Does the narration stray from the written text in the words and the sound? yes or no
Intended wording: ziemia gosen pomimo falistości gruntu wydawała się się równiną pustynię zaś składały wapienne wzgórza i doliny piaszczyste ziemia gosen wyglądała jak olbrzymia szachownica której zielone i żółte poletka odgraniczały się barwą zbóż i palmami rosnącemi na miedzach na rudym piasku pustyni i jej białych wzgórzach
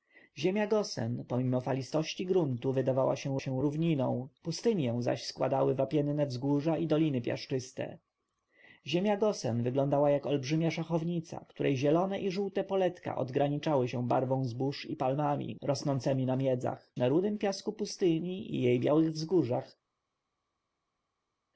no